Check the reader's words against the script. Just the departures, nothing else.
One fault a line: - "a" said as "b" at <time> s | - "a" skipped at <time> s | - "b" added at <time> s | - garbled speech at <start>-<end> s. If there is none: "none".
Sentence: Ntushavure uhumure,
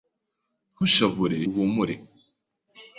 none